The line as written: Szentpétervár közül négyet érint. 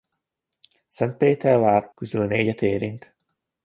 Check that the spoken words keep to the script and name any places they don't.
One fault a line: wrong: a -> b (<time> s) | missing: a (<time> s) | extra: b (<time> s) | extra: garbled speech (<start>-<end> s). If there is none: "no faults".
no faults